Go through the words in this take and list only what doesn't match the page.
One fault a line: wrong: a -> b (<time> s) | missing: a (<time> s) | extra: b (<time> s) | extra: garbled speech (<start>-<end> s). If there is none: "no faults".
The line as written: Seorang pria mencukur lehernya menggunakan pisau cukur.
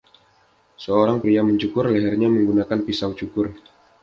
no faults